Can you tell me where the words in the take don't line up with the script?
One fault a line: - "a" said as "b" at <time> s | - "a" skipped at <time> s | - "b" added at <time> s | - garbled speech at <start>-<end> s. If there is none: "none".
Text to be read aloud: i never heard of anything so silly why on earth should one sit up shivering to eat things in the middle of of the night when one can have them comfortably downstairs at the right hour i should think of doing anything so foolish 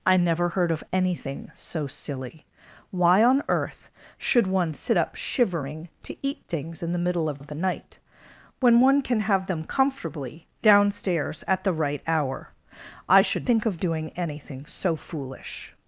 none